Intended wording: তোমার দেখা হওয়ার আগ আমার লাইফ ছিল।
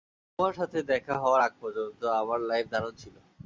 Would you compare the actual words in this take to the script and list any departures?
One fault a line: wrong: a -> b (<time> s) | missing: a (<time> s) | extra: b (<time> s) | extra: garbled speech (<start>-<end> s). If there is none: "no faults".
extra: সাথে (0.5 s)
extra: পর্যন্ত (1.6 s)
extra: দারুণ (2.7 s)